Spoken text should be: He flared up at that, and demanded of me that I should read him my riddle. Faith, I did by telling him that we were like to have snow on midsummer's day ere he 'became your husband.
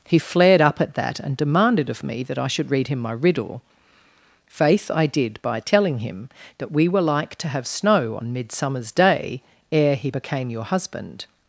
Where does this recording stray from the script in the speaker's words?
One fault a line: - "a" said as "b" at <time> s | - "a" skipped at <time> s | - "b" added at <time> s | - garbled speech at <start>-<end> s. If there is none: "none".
none